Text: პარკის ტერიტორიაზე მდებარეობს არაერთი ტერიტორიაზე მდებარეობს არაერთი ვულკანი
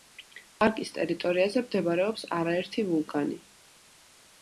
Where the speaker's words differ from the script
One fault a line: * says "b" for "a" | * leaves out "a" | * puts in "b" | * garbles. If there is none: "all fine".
* leaves out "ტერიტორიაზე მდებარეობს არაერთი"